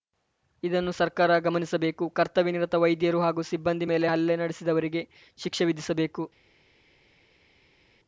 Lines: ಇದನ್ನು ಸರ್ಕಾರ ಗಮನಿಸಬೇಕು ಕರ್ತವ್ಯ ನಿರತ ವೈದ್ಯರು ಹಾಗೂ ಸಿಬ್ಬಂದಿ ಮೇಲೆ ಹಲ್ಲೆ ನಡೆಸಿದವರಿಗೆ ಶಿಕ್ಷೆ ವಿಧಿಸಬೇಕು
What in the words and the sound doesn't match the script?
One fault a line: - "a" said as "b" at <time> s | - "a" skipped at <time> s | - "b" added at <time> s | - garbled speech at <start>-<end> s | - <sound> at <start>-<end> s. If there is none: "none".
none